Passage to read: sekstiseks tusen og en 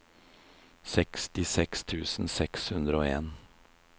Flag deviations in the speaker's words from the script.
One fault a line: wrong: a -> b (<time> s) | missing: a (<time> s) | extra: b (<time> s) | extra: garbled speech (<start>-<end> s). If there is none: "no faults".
extra: seks hundre (2.4 s)